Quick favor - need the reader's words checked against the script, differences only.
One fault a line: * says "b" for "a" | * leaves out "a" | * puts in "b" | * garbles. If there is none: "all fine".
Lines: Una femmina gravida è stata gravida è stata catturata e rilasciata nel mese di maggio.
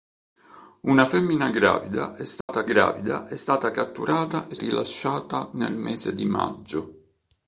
all fine